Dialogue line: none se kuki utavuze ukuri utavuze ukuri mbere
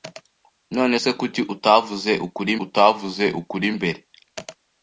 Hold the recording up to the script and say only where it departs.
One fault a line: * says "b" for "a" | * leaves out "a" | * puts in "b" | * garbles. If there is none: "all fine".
all fine